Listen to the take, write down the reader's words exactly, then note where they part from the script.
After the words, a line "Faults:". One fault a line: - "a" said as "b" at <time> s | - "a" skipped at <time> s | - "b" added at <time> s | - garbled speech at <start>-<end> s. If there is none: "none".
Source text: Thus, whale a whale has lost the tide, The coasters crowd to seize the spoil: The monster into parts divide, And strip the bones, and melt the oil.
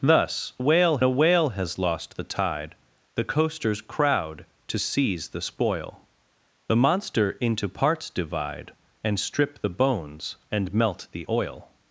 Thus, whale a whale has lost the tide, The coasters crowd to seize the spoil: The monster into parts divide, And strip the bones, and melt the oil.
Faults:
none